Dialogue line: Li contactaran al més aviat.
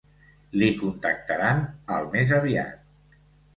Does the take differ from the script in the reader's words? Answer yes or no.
no